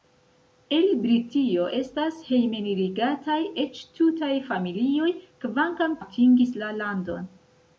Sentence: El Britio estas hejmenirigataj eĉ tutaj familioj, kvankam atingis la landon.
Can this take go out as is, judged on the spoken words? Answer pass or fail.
pass